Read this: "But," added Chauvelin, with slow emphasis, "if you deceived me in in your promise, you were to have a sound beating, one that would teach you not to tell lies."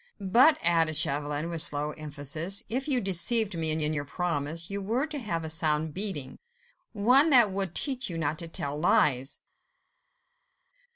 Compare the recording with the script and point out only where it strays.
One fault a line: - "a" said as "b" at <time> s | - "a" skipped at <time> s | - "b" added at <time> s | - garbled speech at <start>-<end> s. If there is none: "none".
none